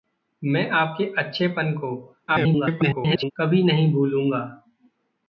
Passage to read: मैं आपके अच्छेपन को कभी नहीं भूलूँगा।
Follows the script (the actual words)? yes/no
no